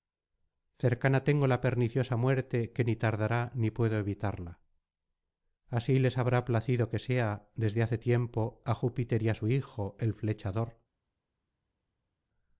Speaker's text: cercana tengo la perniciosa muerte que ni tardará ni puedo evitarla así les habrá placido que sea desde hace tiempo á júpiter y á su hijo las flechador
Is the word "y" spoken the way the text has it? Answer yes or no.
yes